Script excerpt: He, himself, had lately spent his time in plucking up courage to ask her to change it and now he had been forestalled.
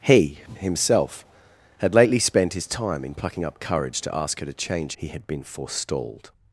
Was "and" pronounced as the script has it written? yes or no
no